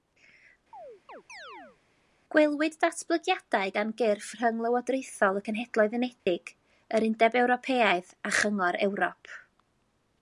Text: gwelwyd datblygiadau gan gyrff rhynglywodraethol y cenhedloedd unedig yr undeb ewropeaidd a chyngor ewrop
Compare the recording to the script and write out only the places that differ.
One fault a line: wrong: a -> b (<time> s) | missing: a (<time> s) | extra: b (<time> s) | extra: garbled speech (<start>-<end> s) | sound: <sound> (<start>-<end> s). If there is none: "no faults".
sound: chirp (0.7-1.8 s)
sound: dropout (6.2-6.3 s)